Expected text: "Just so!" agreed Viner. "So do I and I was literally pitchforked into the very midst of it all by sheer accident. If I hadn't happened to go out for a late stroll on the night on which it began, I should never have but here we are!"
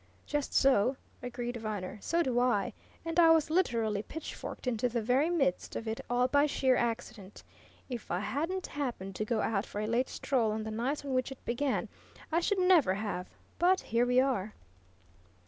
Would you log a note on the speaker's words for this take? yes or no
no